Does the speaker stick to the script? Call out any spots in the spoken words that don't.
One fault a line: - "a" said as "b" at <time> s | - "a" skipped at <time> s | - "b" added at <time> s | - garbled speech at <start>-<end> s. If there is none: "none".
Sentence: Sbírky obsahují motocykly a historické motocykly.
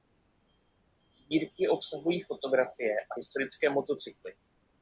- "motocykly" said as "fotografie" at 2.2 s